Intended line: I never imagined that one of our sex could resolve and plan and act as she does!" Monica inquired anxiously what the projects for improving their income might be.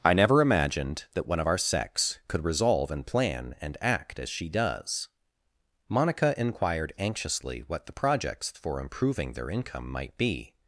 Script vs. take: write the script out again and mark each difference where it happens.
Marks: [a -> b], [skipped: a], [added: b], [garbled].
I never imagined that one of our sex could resolve and plan and act as she does!" Monica inquired anxiously what the projects for improving their income might be.